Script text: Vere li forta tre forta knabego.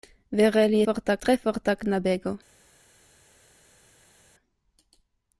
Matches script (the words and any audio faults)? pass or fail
pass